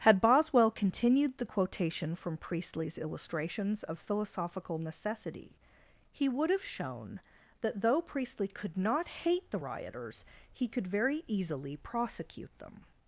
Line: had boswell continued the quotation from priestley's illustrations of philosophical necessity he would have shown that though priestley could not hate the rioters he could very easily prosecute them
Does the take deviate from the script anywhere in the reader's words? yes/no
no